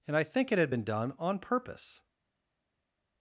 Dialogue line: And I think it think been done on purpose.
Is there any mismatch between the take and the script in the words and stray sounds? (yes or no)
yes